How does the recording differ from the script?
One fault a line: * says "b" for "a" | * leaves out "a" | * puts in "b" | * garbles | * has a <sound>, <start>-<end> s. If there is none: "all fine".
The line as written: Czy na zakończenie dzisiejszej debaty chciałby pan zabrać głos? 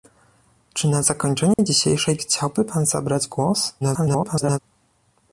* has a dropout, 1.5-1.6 s
* leaves out "debaty"
* garbles